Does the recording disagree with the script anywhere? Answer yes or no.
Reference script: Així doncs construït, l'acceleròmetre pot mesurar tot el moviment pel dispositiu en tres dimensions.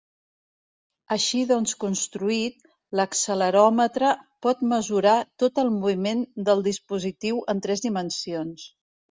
yes